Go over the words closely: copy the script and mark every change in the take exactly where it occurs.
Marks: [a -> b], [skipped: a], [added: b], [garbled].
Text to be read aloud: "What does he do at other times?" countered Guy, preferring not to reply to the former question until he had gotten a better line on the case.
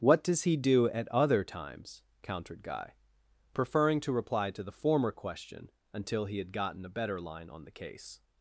"What does he do at other times?" countered Guy, preferring [skipped: not] to reply to the former question until he had gotten a better line on the case.